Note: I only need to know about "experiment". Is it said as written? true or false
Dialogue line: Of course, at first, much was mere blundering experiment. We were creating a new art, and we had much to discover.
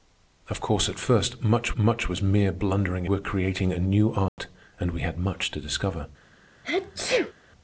false